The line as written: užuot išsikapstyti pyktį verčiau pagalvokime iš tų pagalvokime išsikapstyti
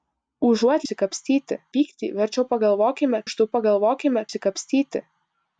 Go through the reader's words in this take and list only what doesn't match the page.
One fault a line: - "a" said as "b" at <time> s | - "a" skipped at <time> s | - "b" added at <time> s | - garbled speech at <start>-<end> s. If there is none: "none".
none